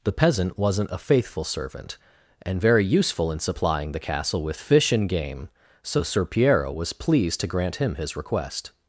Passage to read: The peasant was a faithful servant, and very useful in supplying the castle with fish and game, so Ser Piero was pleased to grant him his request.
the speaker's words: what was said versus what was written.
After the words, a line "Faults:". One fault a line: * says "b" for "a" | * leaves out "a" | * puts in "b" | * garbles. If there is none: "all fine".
The peasant wasn't a faithful servant, and very useful in supplying the castle with fish and game, so Ser Piero was pleased to grant him his request.
Faults:
* says "wasn't" for "was"